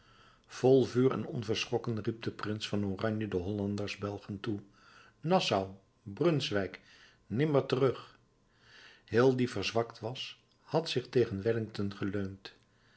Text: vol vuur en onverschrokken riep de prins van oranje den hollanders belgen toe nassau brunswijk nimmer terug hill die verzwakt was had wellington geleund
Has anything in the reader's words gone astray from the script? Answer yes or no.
yes